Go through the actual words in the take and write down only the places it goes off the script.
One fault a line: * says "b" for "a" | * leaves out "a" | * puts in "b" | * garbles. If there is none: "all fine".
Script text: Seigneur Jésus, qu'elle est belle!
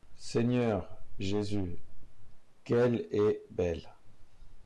all fine